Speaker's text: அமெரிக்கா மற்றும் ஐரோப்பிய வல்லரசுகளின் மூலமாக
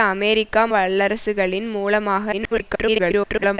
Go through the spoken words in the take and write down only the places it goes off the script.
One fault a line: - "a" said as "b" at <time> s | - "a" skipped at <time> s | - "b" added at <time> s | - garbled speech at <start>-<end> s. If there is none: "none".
- "மற்றும் ஐரோப்பிய" skipped at 0.7 s
- garbled speech at 2.3-3.6 s